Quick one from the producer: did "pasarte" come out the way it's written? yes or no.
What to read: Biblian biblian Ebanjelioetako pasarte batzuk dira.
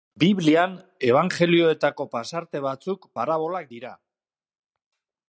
yes